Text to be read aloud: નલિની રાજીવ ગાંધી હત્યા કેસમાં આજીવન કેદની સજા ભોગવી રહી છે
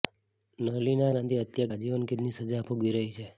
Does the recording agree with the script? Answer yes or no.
no